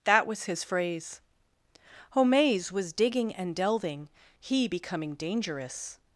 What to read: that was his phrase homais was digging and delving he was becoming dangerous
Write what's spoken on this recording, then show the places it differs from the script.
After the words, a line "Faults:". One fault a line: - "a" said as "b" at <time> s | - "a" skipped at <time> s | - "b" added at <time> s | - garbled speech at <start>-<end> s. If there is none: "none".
that was his phrase homais was digging and delving he becoming dangerous
Faults:
- "was" skipped at 4.7 s